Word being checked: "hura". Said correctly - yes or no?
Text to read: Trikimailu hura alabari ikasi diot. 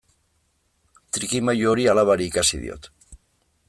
no